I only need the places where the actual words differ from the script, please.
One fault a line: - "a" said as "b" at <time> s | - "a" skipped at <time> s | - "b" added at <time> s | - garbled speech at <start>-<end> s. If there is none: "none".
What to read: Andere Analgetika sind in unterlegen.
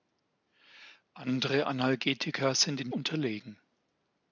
none